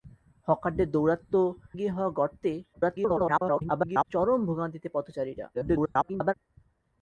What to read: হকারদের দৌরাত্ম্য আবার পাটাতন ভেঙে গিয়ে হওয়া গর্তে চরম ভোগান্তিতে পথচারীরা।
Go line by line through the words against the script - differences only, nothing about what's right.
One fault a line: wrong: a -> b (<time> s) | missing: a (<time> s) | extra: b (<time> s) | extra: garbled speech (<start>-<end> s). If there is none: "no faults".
missing: আবার পাটাতন ভেঙে (1.4 s)
extra: garbled speech (2.7-4.1 s)
extra: garbled speech (5.5-6.3 s)